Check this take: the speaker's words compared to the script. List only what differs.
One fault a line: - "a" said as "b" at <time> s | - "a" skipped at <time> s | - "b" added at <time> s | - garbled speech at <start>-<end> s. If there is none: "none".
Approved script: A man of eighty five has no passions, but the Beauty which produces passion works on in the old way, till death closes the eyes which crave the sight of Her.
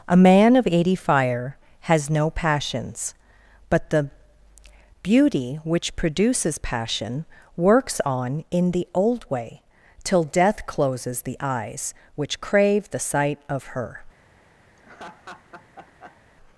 - "five" said as "fire" at 0.9 s